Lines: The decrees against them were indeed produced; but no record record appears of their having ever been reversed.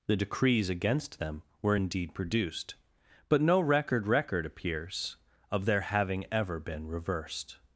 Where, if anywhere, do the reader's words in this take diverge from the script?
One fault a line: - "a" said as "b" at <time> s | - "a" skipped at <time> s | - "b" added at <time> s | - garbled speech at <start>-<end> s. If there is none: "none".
none